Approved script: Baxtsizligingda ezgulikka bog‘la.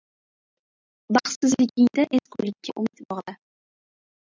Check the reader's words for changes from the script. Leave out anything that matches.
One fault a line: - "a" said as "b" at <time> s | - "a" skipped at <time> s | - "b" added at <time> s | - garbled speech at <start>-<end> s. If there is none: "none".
- "umid" added at 2.8 s